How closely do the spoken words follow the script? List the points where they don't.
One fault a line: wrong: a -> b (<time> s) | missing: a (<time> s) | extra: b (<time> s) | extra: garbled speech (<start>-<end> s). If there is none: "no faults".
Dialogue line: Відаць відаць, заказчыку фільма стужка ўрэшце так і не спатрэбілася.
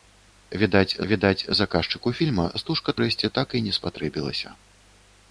no faults